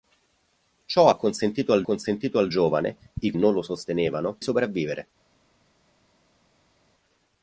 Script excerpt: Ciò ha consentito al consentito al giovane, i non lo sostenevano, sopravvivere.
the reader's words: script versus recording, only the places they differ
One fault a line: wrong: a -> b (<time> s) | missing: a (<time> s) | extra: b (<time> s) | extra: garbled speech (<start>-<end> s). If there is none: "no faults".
no faults